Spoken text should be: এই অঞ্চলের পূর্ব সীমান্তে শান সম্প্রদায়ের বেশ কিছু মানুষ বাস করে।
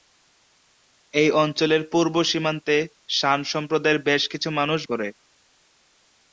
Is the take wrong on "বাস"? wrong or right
wrong